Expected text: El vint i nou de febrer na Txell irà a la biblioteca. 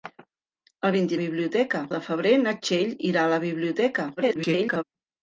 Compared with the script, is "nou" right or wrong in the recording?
wrong